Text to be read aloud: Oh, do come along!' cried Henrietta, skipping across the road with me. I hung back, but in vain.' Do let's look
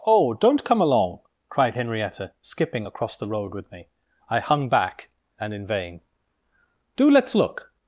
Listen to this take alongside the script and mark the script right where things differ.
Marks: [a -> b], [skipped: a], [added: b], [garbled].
Oh, [do -> don't] come along!' cried Henrietta, skipping across the road with me. I hung back, [but -> and] in vain.' Do let's look